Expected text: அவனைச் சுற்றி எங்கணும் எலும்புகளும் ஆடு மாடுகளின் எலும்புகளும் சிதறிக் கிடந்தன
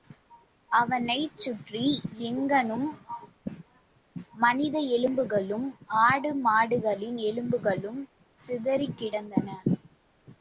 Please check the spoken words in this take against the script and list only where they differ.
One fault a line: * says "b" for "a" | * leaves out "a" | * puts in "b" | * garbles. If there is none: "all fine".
* puts in "மனித"